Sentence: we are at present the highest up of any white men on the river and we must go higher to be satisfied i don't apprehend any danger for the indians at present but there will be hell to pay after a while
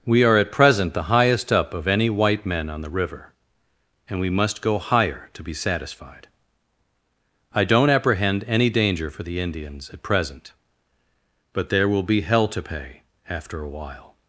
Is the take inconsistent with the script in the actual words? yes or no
no